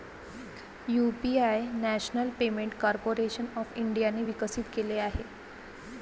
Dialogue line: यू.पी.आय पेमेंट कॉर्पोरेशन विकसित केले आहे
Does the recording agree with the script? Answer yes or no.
no